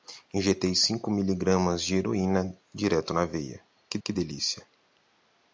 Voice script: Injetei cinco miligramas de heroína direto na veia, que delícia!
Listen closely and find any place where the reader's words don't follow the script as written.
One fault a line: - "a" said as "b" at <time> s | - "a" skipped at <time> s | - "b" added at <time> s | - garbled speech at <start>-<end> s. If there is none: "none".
- "que" added at 4.0 s